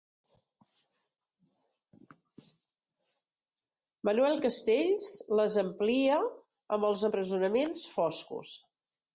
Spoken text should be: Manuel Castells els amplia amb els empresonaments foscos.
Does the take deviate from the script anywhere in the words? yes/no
yes